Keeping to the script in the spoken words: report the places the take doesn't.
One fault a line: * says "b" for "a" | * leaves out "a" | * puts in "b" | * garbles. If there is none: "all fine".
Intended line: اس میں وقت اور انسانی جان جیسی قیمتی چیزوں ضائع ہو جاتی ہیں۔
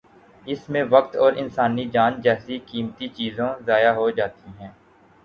all fine